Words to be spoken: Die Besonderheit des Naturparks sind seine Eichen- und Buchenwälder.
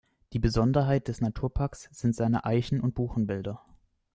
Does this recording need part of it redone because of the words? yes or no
no